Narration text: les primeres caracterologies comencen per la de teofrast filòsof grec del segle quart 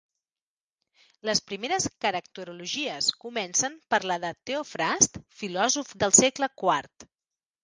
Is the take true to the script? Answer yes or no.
no